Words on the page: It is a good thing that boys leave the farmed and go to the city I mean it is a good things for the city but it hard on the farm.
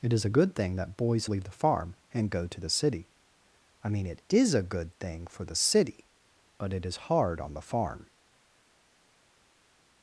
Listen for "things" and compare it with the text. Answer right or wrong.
wrong